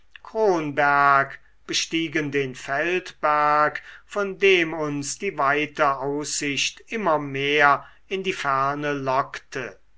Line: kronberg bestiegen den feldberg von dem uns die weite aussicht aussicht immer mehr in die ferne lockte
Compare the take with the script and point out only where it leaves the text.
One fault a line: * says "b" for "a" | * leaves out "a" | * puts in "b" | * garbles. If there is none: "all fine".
* leaves out "aussicht"